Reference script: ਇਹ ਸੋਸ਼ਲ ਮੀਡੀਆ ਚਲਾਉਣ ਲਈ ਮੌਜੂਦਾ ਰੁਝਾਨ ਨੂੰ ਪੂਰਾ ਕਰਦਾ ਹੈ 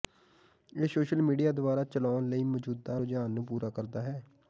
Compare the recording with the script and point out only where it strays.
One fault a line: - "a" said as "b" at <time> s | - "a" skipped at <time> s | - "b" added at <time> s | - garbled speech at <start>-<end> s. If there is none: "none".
- "ਦੁਆਰਾ" added at 1.5 s